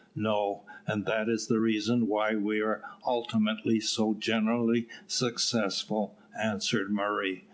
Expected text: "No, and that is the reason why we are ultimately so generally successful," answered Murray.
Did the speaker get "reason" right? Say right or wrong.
right